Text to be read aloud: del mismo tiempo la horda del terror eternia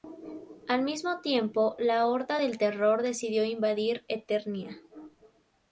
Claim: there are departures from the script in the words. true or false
true